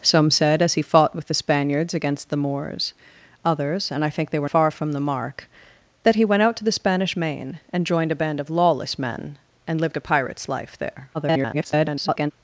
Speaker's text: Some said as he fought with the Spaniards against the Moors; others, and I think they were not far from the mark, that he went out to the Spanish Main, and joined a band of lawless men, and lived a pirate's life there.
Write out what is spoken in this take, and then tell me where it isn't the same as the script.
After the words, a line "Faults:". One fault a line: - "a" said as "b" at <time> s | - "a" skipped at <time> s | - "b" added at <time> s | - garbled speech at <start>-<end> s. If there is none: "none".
Some said as he fought with the Spaniards against the Moors; others, and I think they were far from the mark, that he went out to the Spanish Main, and joined a band of lawless men, and lived a pirate's life there. [garbled]
Faults:
- "not" skipped at 4.5 s
- garbled speech at 11.1-12.3 s